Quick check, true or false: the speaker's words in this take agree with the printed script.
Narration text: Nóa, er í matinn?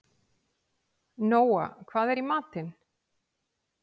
false